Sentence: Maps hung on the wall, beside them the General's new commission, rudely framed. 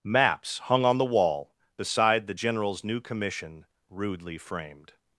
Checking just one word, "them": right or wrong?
wrong